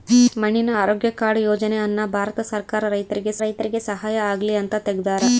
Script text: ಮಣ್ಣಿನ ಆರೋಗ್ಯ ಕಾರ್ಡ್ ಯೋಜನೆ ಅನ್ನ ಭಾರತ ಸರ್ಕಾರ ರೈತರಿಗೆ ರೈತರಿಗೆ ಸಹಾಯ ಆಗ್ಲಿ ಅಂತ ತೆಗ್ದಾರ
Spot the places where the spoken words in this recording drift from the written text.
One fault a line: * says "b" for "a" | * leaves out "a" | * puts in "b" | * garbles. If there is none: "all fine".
all fine